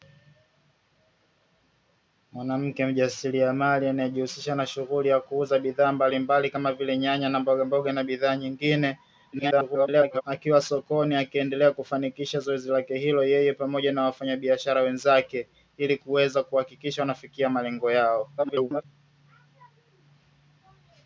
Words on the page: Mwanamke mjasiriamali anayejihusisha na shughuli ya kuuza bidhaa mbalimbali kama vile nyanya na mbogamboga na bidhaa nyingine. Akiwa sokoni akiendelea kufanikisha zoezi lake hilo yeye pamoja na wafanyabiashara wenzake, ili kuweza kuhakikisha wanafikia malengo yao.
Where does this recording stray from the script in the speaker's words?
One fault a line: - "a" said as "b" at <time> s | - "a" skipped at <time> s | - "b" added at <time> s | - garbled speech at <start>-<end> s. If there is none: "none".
- garbled speech at 9.3-10.2 s
- garbled speech at 18.4-18.8 s